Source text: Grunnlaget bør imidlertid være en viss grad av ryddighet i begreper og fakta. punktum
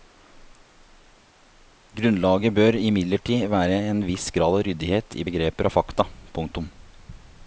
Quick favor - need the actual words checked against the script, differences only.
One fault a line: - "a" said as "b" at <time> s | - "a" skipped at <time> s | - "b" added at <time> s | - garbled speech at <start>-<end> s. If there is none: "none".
none